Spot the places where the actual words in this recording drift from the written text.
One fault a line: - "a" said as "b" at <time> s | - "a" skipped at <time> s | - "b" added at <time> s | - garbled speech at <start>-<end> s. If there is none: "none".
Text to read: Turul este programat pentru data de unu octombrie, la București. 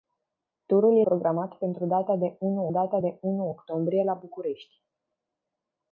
- "este" skipped at 1.0 s
- "data de unu" added at 2.7 s